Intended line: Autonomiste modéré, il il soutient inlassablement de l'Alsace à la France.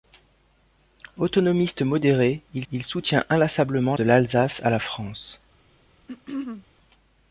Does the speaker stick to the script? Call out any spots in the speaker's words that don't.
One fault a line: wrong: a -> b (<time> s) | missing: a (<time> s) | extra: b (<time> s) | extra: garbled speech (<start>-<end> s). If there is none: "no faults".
no faults